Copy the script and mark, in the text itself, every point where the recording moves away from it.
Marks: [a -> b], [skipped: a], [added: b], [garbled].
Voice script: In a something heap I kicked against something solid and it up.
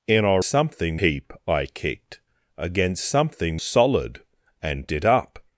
In a something heap I kicked against something solid and it up.